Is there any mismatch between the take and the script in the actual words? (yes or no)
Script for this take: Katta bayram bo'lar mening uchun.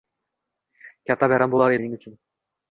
no